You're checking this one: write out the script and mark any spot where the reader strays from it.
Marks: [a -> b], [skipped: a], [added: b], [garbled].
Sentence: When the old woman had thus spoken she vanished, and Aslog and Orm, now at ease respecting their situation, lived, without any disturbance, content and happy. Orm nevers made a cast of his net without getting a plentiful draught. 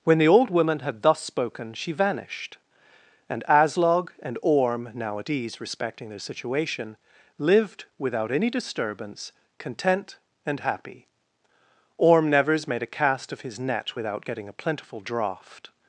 When the old woman had thus spoken she vanished, and Aslog and Orm, now at ease respecting their situation, lived, without any disturbance, content and happy. Orm nevers made a cast of his net without getting a plentiful draught.